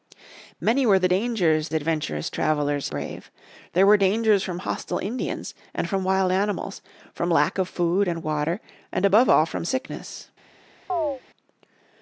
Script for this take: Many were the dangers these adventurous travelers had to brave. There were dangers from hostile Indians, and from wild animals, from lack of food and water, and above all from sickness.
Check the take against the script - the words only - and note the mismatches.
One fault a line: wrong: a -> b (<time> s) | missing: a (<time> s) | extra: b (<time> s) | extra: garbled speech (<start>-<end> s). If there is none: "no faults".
missing: these (1.7 s)
missing: had to (2.9 s)